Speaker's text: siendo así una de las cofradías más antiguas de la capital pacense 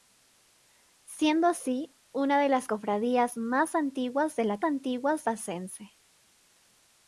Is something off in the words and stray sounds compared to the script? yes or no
yes